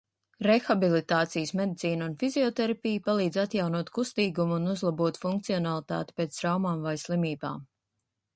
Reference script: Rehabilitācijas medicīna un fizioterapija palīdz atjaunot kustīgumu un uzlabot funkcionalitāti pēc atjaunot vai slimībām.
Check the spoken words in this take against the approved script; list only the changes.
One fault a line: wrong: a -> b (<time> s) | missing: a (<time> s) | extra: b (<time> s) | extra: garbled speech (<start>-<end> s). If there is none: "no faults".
wrong: atjaunot -> traumām (6.4 s)